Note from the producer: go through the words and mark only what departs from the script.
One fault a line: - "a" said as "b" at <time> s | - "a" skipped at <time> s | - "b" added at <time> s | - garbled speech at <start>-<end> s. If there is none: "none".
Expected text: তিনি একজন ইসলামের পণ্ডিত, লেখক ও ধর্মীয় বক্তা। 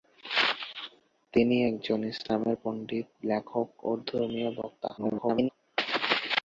- garbled speech at 5.0-5.5 s